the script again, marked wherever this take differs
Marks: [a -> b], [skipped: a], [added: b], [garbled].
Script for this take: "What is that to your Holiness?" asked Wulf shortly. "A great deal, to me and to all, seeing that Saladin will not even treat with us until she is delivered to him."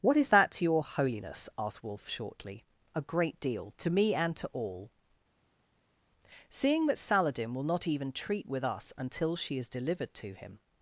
"What is that to your Holiness?" asked Wulf shortly. "A great deal, to me and to all, seeing that Saladin will not even treat with us until she is delivered to him."